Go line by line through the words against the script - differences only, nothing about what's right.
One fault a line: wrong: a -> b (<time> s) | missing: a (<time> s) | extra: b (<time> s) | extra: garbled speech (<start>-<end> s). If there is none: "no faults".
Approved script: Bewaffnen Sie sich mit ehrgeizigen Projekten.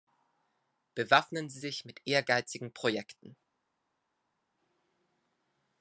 no faults